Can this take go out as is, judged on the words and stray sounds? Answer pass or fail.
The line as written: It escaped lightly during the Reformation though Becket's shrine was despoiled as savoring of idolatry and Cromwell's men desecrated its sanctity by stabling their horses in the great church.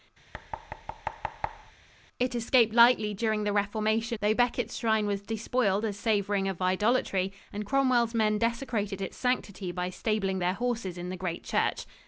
fail